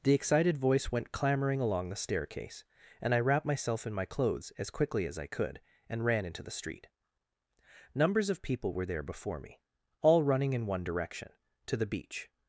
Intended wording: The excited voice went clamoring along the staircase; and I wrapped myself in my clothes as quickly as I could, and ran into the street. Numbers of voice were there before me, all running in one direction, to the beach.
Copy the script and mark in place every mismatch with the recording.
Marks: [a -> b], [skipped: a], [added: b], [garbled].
The excited voice went clamoring along the staircase; and I wrapped myself in my clothes as quickly as I could, and ran into the street. Numbers of [voice -> people] were there before me, all running in one direction, to the beach.